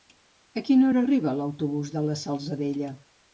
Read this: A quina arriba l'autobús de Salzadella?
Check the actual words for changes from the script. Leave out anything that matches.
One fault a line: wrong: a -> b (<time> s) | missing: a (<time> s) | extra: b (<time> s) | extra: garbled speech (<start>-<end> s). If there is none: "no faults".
extra: hora (0.9 s)
extra: la (2.1 s)